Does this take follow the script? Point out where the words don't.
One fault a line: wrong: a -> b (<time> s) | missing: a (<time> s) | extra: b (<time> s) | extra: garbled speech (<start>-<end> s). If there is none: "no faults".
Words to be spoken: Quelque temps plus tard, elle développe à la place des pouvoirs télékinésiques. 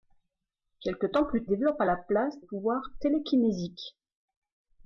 missing: tard elle (1.4 s)
missing: des (2.4 s)